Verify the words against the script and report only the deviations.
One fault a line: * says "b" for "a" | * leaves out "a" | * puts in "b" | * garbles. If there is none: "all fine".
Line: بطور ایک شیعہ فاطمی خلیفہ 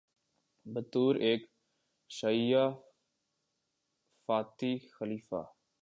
all fine